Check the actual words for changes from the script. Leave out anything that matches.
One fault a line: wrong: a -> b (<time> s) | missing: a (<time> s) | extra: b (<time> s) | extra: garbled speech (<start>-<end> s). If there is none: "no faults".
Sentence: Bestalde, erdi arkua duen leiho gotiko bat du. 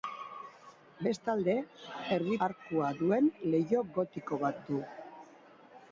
no faults